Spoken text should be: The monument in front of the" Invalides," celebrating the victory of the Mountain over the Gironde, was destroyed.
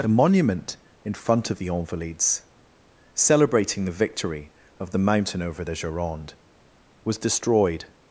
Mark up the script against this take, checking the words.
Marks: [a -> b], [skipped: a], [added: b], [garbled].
[The -> A] monument in front of the" Invalides," celebrating the victory of the Mountain over the Gironde, was destroyed.